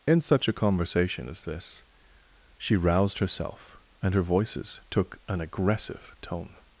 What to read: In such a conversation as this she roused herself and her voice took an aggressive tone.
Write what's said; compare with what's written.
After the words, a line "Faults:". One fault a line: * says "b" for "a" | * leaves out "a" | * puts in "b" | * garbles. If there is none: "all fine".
In such a conversation as this she roused herself and her voices took an aggressive tone.
Faults:
* says "voices" for "voice"